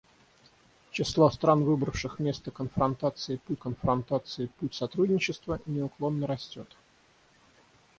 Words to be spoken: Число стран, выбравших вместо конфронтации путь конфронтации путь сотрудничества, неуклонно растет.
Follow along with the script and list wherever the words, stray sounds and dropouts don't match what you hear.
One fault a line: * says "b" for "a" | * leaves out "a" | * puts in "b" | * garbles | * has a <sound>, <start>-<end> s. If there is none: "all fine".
all fine